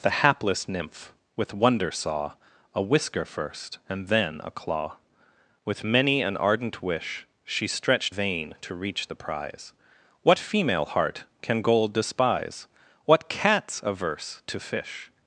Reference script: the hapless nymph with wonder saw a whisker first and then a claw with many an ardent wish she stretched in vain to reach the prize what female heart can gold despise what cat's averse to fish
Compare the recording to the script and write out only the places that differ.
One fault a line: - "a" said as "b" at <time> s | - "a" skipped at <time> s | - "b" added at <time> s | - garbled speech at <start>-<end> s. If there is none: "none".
- "in" skipped at 8.2 s